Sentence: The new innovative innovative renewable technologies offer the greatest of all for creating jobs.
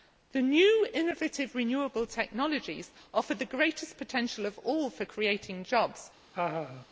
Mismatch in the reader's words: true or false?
true